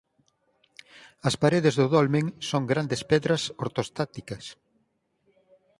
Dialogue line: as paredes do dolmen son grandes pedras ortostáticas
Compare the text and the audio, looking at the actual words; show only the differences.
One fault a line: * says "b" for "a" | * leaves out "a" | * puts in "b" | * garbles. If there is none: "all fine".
all fine